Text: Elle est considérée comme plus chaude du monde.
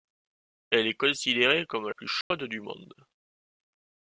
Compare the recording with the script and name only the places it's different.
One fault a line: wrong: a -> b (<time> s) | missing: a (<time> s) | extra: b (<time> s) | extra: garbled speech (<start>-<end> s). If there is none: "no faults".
no faults